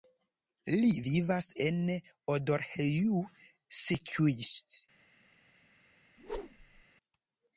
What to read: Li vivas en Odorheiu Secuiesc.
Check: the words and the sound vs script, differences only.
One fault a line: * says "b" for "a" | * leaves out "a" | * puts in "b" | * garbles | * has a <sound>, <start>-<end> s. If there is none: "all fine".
* has a whoosh, 6.2-6.8 s